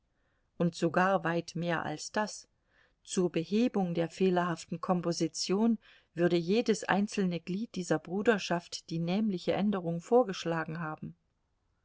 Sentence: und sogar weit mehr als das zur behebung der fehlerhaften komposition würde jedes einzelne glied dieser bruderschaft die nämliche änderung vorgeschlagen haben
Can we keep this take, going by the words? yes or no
yes